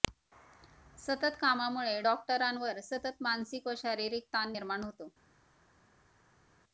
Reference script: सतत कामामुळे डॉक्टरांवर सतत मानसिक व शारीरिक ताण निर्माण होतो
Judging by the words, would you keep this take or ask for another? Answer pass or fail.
pass